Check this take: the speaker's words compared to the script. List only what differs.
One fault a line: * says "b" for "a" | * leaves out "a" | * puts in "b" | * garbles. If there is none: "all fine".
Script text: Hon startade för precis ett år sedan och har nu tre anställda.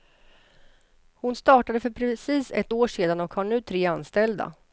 all fine